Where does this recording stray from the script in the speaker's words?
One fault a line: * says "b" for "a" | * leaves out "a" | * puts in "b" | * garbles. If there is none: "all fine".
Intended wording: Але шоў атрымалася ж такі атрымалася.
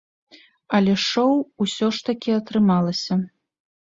* says "усё" for "атрымалася"